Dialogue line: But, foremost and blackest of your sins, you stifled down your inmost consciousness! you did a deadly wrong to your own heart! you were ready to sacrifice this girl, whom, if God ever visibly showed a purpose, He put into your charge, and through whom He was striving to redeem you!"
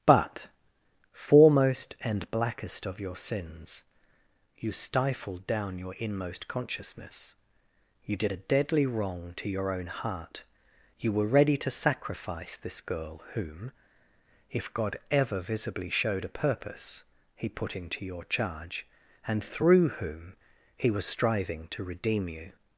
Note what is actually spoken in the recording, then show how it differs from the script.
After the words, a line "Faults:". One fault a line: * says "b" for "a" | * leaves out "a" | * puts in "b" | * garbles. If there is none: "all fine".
But, foremost and blackest of your sins, you stifled down your inmost consciousness! you did a deadly wrong to your own heart! you were ready to sacrifice this girl, whom, if God ever visibly showed a purpose, He put into your charge, and through whom He was striving to redeem you!"
Faults:
all fine